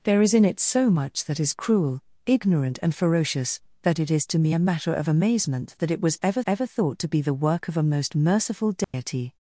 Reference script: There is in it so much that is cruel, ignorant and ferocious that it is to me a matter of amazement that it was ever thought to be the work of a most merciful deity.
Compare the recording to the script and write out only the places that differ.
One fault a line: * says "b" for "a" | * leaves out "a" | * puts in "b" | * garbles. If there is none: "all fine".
* puts in "ever"